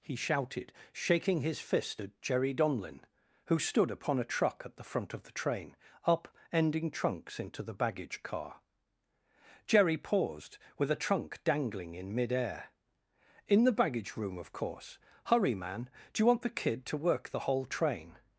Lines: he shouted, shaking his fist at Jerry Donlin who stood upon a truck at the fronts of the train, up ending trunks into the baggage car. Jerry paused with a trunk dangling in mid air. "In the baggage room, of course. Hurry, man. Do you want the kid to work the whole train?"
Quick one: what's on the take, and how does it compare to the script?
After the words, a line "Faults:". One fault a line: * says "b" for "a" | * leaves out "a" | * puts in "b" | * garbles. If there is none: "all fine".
he shouted, shaking his fist at Jerry Donlin who stood upon a truck at the front of the train, up ending trunks into the baggage car. Jerry paused with a trunk dangling in mid air. "In the baggage room, of course. Hurry, man. Do you want the kid to work the whole train?"
Faults:
* says "front" for "fronts"